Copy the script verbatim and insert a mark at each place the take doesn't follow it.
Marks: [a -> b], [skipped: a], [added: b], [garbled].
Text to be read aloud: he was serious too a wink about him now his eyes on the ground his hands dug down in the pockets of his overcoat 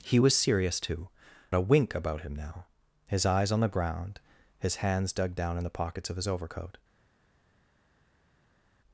he was serious too a wink about him now his eyes on the ground his hands dug down in the pockets of his overcoat